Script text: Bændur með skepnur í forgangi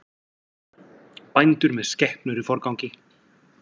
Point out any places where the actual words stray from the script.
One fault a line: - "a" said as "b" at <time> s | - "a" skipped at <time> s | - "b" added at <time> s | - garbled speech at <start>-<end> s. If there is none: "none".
none